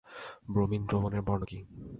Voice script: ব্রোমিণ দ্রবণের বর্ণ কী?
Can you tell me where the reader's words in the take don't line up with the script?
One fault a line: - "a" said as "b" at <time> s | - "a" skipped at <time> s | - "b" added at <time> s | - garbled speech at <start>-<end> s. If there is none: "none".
none